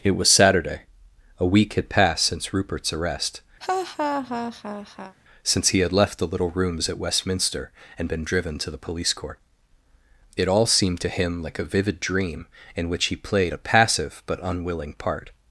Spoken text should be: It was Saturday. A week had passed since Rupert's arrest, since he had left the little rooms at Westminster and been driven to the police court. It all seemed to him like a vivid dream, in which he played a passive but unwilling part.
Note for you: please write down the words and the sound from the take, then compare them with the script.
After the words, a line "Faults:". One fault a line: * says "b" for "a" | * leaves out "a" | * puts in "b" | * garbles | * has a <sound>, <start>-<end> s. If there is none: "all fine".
It was Saturday. A week had passed since Rupert's arrest, since he had left the little rooms at Westminster and been driven to the police court. It all seemed to him like a vivid dream, in which he played a passive but unwilling part.
Faults:
* has a laugh, 3.6-5.2 s